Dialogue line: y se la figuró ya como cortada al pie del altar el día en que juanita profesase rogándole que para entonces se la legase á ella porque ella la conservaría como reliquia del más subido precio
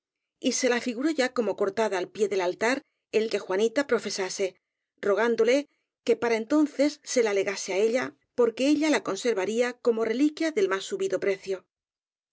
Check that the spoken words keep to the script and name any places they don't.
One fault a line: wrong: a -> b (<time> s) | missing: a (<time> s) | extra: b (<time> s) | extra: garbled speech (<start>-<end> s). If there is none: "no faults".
missing: día en (3.3 s)